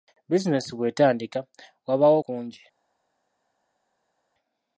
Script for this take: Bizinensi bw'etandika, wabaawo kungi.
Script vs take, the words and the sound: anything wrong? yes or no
no